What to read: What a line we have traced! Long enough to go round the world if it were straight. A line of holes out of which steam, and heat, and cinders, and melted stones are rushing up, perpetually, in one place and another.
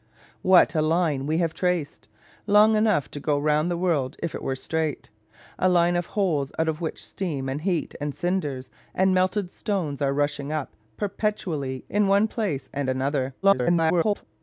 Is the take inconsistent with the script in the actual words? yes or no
yes